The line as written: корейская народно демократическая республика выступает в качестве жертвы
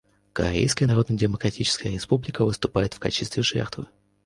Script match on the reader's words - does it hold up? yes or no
yes